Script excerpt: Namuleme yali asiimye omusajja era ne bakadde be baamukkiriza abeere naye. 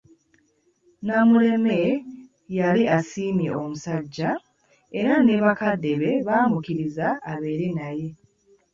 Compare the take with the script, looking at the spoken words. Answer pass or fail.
pass